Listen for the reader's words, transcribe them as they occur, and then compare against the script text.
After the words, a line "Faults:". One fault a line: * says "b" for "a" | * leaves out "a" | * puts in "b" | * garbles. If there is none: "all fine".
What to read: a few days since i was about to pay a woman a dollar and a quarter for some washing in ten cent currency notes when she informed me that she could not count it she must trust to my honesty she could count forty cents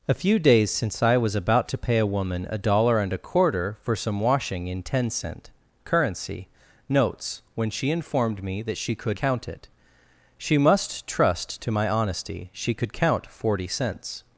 a few days since i was about to pay a woman a dollar and a quarter for some washing in ten cent currency notes when she informed me that she could count it she must trust to my honesty she could count forty cents
Faults:
* leaves out "not"